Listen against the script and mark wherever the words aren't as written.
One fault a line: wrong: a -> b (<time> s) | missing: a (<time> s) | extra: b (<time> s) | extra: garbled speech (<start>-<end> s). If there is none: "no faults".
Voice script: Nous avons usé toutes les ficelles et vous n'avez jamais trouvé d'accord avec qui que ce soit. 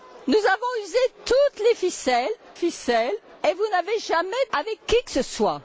extra: ficelles (2.5 s)
missing: trouvé d'accord (4.5 s)